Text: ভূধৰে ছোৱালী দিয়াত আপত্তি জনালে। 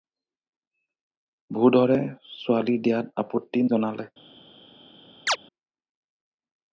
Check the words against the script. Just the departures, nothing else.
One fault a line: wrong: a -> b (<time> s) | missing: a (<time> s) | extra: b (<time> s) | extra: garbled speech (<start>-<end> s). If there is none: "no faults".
no faults